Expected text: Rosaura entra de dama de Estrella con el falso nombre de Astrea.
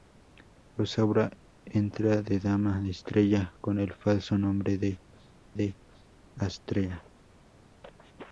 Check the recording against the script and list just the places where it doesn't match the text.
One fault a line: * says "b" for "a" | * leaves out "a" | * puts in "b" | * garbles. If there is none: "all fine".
* puts in "de"